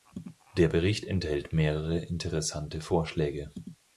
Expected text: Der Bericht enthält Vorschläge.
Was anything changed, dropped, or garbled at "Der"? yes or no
no